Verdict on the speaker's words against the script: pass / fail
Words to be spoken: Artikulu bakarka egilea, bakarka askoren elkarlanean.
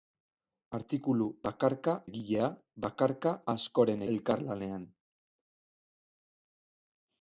pass